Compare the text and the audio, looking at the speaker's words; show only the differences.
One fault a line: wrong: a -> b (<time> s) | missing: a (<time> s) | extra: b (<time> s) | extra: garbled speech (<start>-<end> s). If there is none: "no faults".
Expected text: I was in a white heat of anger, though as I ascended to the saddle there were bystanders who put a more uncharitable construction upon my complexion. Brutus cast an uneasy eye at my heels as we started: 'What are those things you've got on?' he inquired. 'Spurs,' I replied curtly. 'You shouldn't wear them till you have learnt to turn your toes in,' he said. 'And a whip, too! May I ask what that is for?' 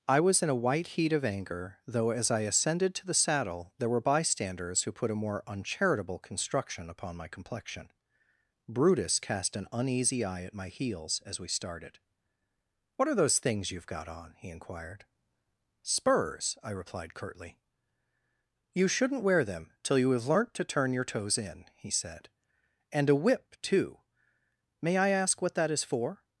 no faults